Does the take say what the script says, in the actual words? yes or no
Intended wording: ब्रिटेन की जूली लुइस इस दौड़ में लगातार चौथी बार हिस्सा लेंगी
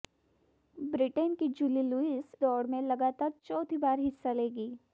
no